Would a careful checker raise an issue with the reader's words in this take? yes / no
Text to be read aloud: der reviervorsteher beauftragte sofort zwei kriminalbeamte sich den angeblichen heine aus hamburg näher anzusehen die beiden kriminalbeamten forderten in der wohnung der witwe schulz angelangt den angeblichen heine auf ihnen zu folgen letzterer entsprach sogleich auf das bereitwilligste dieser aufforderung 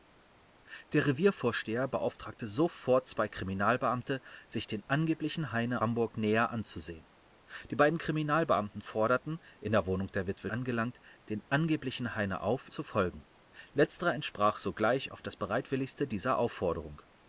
yes